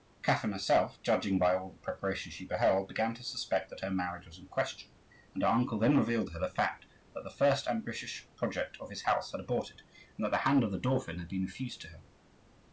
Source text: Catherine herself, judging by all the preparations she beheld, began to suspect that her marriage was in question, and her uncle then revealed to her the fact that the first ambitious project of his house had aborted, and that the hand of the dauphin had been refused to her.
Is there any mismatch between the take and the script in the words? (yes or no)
no